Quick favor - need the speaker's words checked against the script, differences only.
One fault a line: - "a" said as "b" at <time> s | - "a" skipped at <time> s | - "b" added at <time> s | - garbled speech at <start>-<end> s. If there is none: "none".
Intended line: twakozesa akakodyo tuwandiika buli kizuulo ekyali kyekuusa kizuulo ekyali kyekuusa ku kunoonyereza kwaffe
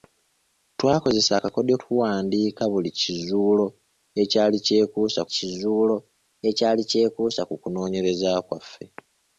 none